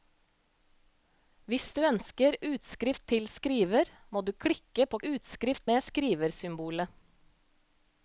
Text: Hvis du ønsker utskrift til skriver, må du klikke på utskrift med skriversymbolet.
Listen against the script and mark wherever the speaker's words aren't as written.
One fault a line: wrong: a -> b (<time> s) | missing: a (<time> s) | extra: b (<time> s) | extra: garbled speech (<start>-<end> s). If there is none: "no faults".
no faults